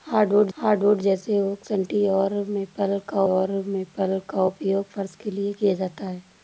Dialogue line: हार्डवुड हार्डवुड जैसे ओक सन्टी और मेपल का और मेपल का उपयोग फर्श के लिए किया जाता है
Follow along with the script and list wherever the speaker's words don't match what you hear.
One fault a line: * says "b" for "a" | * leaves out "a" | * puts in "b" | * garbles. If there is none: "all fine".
all fine